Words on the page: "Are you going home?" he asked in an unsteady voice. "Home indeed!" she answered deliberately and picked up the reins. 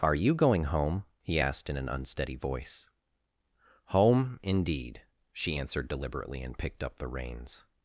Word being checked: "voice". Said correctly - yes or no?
yes